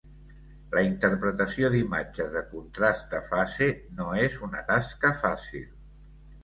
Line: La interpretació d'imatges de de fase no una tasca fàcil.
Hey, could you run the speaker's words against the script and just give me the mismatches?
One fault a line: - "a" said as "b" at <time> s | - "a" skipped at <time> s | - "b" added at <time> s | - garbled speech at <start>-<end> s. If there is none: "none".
- "contrast" added at 2.5 s
- "és" added at 4.3 s